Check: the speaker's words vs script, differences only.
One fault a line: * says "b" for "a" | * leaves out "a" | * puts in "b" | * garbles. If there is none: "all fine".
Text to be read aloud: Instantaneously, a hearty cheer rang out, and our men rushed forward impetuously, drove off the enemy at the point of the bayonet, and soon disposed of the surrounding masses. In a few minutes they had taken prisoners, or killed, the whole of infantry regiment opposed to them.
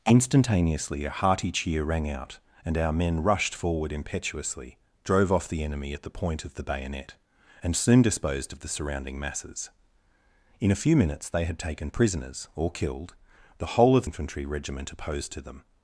all fine